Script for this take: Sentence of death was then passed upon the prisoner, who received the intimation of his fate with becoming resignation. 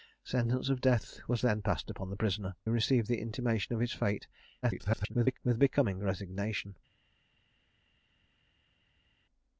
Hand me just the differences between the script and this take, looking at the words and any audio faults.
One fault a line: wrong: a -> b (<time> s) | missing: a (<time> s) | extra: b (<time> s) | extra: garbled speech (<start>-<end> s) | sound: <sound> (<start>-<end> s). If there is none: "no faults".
missing: who (2.5 s)
extra: garbled speech (4.6-5.4 s)